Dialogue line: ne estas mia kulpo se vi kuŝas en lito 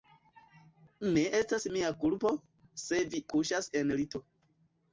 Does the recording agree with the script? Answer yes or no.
yes